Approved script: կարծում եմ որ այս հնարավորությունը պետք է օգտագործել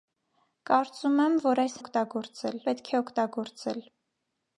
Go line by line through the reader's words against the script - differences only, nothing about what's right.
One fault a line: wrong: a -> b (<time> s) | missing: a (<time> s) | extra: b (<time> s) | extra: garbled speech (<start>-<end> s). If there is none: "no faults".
wrong: հնարավորությունը -> օգտագործել (1.8 s)